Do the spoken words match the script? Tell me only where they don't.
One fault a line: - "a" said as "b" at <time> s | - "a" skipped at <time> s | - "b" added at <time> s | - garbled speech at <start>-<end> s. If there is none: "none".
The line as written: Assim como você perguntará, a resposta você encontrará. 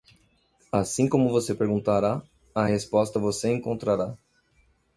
none